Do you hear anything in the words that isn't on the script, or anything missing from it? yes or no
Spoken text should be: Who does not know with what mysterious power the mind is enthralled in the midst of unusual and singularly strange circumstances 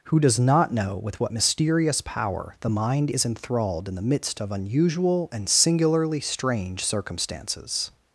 no